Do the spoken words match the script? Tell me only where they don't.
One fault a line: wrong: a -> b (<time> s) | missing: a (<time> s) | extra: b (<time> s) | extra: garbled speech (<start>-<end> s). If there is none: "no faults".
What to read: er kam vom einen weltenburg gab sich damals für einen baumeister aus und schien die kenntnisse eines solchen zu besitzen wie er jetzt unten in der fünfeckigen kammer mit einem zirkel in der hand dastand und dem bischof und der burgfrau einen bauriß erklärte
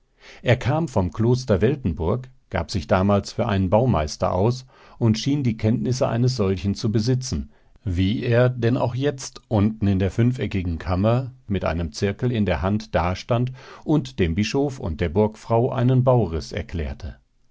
wrong: einen -> kloster (1.1 s)
extra: denn auch (8.5 s)